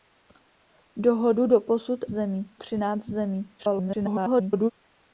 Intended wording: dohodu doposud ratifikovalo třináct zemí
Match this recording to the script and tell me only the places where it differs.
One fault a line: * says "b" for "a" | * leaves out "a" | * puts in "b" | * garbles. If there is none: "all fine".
* says "zemí" for "ratifikovalo"
* garbles